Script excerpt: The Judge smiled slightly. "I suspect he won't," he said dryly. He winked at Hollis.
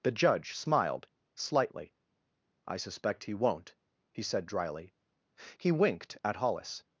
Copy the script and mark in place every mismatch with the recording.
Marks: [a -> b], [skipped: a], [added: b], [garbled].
The Judge smiled slightly. "I suspect he won't," he said dryly. He winked at Hollis.